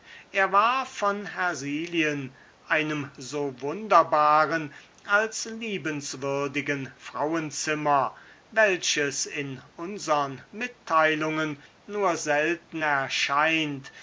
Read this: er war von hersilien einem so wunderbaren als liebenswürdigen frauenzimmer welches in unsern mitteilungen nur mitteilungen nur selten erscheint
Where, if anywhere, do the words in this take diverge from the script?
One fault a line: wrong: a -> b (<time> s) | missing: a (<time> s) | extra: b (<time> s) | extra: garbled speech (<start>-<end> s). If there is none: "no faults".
missing: mitteilungen nur (12.2 s)